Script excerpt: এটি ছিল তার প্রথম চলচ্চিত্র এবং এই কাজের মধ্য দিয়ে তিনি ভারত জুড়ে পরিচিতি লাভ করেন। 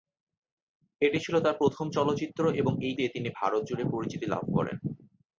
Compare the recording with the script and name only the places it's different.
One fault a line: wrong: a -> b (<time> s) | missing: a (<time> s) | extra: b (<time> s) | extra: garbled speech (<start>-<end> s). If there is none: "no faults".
missing: কাজের মধ্য (3.0 s)